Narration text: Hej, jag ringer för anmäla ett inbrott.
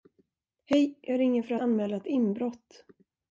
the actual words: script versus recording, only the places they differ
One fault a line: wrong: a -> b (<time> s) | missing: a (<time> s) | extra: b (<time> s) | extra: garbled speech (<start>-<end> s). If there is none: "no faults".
no faults